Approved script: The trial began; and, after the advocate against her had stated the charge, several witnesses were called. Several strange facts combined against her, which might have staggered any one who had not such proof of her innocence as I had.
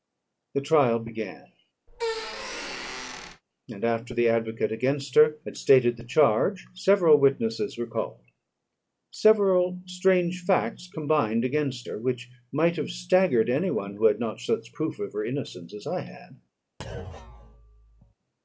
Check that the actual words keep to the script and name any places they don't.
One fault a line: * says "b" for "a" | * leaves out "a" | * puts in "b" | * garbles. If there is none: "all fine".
all fine